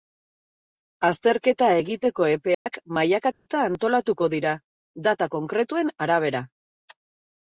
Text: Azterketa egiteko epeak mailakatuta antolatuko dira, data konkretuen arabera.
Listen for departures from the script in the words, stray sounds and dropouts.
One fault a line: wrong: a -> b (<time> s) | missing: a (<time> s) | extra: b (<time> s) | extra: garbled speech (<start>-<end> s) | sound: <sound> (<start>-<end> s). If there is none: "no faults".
sound: dropout (2.5-2.7 s)
sound: dropout (3.3-3.5 s)